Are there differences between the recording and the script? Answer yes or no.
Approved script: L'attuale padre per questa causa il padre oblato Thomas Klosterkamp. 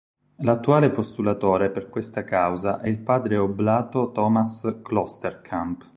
yes